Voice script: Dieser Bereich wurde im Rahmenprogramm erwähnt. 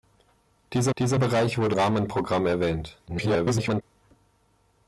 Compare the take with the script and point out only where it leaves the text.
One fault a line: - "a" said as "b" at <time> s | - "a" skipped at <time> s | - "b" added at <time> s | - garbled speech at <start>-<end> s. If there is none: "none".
- "dieser" added at 1.0 s
- "im" skipped at 1.8 s
- garbled speech at 3.1-3.8 s